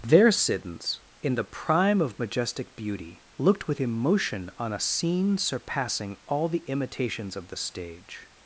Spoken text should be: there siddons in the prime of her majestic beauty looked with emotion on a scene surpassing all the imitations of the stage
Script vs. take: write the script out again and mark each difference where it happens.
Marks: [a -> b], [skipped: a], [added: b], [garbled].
there siddons in the prime of [skipped: her] majestic beauty looked with emotion on a scene surpassing all the imitations of the stage